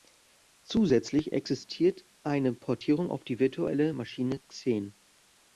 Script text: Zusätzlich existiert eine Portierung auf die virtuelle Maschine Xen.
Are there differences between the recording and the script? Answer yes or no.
no